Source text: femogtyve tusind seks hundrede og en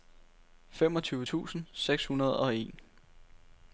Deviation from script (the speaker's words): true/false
false